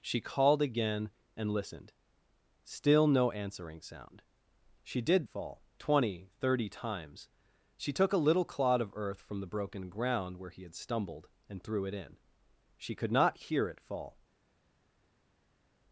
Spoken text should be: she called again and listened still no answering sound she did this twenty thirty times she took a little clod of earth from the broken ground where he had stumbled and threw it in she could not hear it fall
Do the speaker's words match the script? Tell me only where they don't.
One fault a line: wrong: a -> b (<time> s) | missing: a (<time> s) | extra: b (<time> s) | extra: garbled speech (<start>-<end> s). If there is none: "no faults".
wrong: this -> fall (5.3 s)